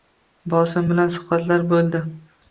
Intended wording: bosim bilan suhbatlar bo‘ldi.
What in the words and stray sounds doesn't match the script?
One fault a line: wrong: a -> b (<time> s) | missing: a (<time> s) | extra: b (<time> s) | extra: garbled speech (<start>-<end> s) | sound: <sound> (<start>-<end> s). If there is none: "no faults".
no faults